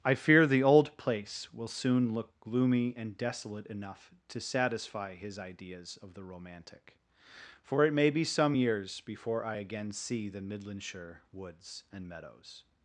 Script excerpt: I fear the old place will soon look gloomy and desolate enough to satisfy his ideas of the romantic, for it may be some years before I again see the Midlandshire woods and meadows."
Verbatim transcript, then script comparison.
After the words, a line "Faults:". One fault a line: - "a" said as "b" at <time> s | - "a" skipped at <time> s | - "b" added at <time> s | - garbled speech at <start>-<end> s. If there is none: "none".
I fear the old place will soon look gloomy and desolate enough to satisfy his ideas of the romantic, for it may be some years before I again see the Midlandshire woods and meadows."
Faults:
none